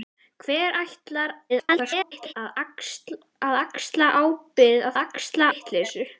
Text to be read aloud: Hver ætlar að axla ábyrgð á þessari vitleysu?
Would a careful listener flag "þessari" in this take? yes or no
yes